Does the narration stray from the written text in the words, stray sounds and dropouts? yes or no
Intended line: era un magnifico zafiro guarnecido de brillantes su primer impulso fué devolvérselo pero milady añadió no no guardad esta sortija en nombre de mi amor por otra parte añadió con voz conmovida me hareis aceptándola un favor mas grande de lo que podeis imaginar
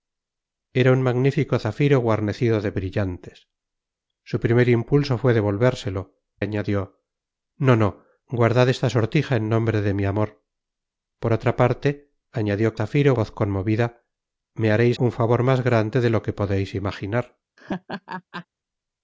yes